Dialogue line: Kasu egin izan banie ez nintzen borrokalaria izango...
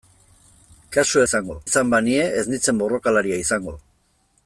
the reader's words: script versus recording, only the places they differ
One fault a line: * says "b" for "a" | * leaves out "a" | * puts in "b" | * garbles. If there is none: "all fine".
* says "izango" for "egin"